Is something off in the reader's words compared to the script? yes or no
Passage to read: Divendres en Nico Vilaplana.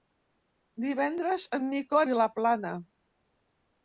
no